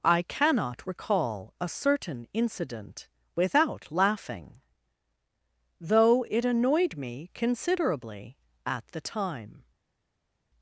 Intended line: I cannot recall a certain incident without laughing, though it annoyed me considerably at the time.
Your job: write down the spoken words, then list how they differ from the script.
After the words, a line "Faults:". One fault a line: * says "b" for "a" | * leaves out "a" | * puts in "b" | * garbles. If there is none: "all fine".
I cannot recall a certain incident without laughing, though it annoyed me considerably at the time.
Faults:
all fine